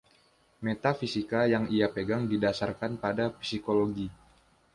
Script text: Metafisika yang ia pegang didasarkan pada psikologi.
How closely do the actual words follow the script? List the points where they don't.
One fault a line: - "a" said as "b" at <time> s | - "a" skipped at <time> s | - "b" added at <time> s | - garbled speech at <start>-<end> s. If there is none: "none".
none